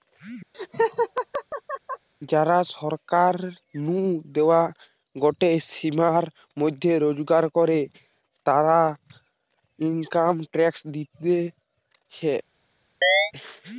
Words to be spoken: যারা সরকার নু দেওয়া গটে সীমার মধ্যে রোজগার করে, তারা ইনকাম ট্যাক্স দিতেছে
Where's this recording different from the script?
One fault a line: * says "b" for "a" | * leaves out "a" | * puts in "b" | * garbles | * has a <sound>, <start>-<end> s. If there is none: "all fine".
* has a laugh, 0.5-2.1 s
* has a chirp, 13.0-13.3 s